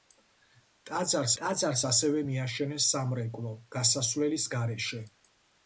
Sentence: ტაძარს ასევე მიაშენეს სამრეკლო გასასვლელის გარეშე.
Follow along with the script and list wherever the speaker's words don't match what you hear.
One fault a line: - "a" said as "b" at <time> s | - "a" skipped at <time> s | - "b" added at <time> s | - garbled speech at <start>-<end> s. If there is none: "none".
- "ტაძარს" added at 1.4 s